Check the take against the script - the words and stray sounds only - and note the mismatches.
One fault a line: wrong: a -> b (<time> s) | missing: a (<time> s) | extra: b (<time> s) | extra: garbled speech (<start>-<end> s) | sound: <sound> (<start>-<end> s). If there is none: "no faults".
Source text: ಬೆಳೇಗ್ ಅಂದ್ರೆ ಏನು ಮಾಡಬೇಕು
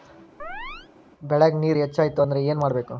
sound: chirp (0.4-0.9 s)
extra: ನೇರ ಹೆಚ್ಚಾಯ್ತು (1.6 s)